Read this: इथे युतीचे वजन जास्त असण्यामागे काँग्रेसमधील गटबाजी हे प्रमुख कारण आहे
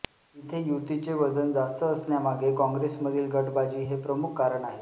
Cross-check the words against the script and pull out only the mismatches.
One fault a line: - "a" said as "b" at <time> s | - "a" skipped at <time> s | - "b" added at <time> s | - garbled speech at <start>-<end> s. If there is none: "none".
none